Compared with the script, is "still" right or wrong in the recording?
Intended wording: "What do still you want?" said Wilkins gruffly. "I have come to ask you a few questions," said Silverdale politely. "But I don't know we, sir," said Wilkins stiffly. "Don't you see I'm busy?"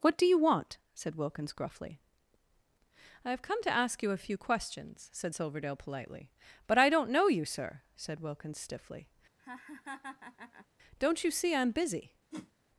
wrong